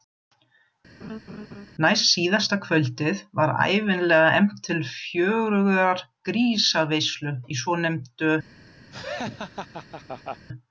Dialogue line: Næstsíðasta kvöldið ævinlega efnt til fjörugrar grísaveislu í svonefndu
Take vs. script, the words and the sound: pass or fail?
fail